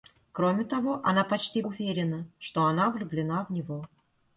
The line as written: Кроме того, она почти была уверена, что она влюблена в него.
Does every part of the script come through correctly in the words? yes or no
no